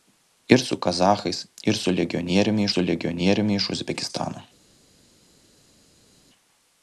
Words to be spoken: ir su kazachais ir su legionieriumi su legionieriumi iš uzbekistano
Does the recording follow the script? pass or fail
pass